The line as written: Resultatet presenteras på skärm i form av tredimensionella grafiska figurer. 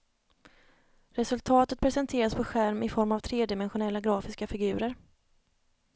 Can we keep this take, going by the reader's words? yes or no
yes